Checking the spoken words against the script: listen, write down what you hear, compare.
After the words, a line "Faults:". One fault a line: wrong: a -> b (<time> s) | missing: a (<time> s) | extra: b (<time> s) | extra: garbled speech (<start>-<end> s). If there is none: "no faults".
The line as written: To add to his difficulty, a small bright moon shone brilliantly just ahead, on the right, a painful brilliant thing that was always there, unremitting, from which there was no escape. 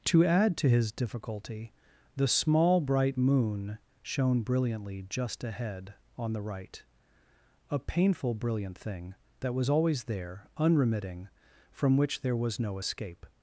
To add to his difficulty, the small bright moon shone brilliantly just ahead, on the right, a painful brilliant thing that was always there, unremitting, from which there was no escape.
Faults:
wrong: a -> the (2.1 s)